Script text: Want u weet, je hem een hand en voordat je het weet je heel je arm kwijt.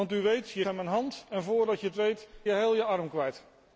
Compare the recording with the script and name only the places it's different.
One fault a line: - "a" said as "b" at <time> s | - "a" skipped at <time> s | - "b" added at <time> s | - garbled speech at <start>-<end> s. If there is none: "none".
none